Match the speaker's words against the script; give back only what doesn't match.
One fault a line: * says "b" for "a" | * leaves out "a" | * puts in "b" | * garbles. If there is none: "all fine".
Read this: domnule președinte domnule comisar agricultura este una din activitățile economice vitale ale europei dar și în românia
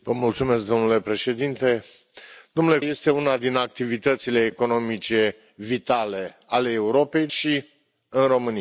* leaves out "comisar agricultura"
* leaves out "dar"